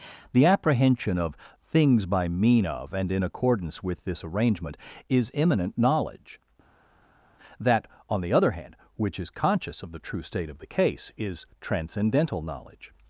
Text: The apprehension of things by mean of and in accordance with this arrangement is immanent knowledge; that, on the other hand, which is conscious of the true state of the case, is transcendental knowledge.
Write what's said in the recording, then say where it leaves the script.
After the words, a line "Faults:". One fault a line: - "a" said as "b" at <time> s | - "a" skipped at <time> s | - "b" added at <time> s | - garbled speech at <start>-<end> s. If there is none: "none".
The apprehension of things by mean of and in accordance with this arrangement is immanent knowledge; that, on the other hand, which is conscious of the true state of the case, is transcendental knowledge.
Faults:
none